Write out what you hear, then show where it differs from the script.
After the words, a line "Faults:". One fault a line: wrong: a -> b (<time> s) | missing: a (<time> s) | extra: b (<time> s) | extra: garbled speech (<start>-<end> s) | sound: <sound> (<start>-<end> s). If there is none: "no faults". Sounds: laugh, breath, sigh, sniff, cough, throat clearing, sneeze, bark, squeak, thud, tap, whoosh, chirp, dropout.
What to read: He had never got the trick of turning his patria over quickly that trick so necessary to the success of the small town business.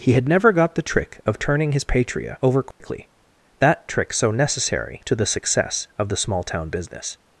He had never got the trick of turning his patria over quickly that trick so necessary to the success of the small town business.
Faults:
sound: dropout (2.7-2.8 s)